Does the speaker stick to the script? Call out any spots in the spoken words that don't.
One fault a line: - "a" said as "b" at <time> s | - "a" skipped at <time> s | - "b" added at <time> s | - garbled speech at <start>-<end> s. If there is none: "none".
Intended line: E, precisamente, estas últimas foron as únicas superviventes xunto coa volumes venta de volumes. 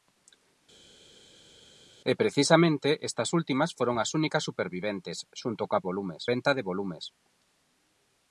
none